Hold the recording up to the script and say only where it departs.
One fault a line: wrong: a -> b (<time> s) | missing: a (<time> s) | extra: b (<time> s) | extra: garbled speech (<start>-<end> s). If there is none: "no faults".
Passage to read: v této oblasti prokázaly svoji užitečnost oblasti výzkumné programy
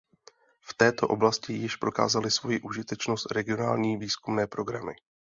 extra: již (1.5 s)
wrong: oblasti -> regionální (3.3 s)